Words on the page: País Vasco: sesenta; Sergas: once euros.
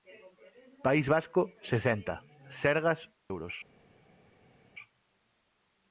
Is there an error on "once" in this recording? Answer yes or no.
yes